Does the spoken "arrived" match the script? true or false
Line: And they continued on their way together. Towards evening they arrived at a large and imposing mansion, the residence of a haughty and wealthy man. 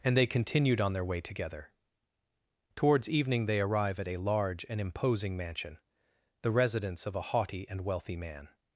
false